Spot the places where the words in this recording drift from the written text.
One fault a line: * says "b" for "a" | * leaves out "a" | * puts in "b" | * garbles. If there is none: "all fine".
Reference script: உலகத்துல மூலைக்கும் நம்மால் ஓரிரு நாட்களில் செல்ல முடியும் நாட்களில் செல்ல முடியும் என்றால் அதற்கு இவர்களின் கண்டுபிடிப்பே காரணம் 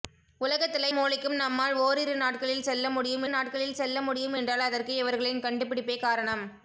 all fine